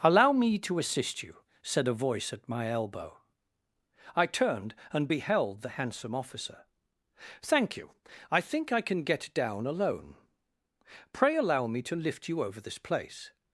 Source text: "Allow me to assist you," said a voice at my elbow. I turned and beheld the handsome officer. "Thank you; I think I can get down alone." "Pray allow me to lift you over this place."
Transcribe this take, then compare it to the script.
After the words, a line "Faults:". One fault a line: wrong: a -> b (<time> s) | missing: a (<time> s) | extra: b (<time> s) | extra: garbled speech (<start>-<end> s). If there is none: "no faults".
"Allow me to assist you," said a voice at my elbow. I turned and beheld the handsome officer. "Thank you; I think I can get down alone." "Pray allow me to lift you over this place."
Faults:
no faults